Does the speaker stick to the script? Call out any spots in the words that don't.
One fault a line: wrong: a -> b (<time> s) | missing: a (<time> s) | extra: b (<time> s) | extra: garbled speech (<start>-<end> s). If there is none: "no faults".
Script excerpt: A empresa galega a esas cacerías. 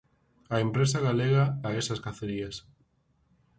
no faults